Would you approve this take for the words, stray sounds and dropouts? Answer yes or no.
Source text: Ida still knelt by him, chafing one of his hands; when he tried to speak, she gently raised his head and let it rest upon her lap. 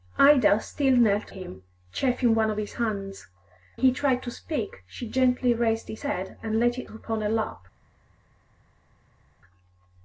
no